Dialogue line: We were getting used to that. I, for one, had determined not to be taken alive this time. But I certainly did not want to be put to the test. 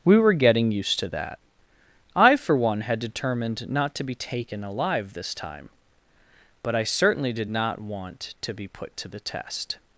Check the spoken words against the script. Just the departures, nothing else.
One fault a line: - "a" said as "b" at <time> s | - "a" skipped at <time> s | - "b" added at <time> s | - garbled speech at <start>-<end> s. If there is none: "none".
none